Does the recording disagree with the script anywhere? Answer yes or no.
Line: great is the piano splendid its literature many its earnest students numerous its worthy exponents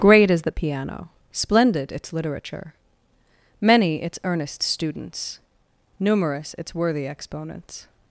no